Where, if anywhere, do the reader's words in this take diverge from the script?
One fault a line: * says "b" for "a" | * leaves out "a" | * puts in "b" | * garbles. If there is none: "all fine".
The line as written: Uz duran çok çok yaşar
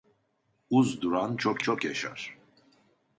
all fine